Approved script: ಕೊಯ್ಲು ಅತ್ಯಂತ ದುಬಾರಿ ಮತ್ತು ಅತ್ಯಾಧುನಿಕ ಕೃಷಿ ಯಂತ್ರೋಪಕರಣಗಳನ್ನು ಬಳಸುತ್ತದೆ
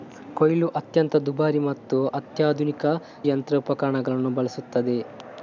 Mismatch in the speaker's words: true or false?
true